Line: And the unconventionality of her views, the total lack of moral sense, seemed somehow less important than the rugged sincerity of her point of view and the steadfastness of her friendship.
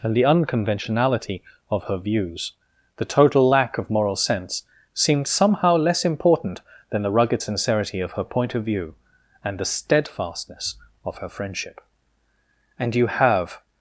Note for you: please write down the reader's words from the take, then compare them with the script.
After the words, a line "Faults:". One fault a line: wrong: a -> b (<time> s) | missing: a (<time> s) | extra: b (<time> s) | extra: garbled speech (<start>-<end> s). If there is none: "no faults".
And the unconventionality of her views, the total lack of moral sense, seemed somehow less important than the rugged sincerity of her point of view and the steadfastness of her friendship. "And you have
Faults:
extra: And you have (12.8 s)